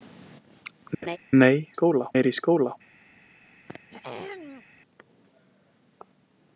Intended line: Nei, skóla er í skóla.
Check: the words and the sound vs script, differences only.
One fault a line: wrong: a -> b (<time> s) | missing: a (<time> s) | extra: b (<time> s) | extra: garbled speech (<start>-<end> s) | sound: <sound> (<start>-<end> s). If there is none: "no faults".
sound: laugh (1.0-1.2 s)
sound: throat clearing (3.7-4.6 s)